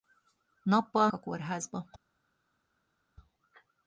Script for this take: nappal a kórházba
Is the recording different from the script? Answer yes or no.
no